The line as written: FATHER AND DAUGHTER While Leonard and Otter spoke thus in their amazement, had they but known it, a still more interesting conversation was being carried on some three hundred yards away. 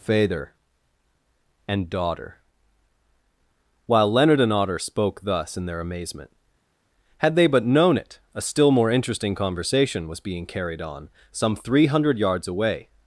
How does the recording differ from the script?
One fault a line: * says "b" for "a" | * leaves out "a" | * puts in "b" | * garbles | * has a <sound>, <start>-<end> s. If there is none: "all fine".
all fine